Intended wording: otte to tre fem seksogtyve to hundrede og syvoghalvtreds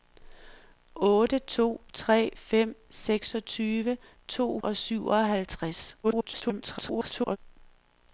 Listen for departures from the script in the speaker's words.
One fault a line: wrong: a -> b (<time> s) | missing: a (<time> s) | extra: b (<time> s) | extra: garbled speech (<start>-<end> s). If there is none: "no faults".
missing: hundrede (4.6 s)
extra: garbled speech (6.0-7.4 s)